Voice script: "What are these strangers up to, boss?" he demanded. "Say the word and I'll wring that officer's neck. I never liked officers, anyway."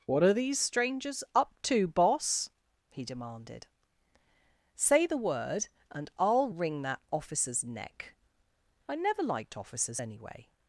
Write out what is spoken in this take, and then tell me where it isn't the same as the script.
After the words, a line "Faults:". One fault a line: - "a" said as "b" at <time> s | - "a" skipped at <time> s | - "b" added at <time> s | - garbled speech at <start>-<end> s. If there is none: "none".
"What are these strangers up to, boss?" he demanded. "Say the word and I'll wring that officer's neck. I never liked officers, anyway."
Faults:
none